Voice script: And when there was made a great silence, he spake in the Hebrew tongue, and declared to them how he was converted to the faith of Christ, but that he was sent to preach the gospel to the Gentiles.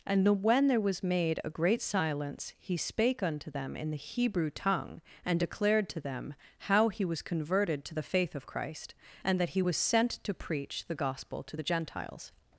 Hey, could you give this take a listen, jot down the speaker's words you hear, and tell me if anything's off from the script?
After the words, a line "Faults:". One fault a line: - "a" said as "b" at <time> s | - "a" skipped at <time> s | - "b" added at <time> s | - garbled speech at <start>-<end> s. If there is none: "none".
And when there was made a great silence, he spake unto them in the Hebrew tongue, and declared to them how he was converted to the faith of Christ, and that he was sent to preach the gospel to the Gentiles.
Faults:
- "unto them" added at 3.2 s
- "but" said as "and" at 9.2 s